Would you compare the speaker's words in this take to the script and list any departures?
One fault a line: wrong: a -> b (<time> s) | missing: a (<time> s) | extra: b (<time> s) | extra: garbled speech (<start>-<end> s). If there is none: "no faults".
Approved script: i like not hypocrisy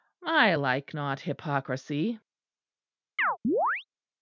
no faults